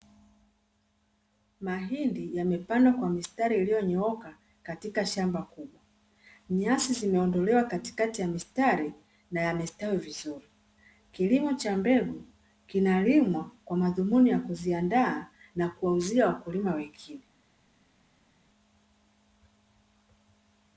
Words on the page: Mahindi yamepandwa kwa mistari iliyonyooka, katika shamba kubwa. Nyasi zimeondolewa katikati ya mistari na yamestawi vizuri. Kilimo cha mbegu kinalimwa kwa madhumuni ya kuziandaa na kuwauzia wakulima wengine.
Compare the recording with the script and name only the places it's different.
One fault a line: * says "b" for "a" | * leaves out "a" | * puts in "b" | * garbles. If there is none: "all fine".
all fine